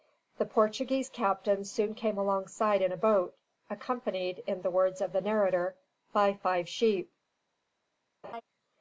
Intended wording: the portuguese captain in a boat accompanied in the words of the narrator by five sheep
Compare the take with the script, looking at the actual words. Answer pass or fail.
fail